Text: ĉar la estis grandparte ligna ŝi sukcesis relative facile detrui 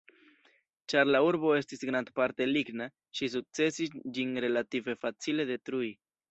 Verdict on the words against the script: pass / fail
fail